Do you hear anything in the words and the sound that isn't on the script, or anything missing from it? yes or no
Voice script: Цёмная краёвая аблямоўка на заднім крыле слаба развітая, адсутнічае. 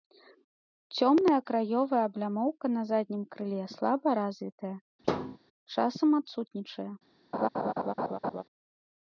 yes